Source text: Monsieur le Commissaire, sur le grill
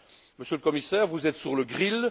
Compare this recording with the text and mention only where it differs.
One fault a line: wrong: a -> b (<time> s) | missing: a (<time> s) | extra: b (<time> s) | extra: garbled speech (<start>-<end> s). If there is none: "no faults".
extra: vous êtes (1.1 s)